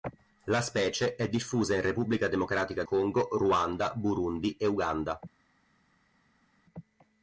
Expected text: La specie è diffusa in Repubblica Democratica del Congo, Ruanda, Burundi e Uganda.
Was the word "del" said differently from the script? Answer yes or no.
yes